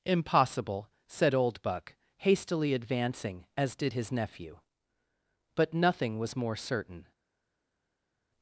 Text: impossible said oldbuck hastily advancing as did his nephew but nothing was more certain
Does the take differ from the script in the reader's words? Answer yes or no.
no